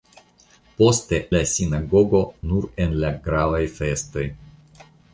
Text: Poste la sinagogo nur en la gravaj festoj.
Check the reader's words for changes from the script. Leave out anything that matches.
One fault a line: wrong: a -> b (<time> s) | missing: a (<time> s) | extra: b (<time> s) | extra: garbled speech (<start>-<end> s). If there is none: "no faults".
no faults